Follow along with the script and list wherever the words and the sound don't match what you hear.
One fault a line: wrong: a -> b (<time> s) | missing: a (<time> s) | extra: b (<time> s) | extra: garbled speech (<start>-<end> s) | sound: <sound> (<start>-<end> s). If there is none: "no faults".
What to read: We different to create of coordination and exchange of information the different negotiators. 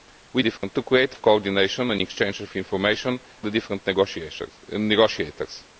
sound: dropout (0.6-0.6 s)